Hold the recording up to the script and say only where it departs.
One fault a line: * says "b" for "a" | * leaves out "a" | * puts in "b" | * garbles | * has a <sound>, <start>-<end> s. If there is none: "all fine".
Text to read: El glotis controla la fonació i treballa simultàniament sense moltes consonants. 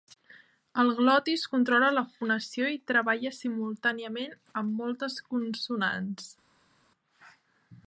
* says "amb" for "sense"